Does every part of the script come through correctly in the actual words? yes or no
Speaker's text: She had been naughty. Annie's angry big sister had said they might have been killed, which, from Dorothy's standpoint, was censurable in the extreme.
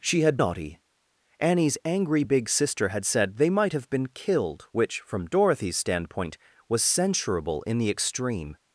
no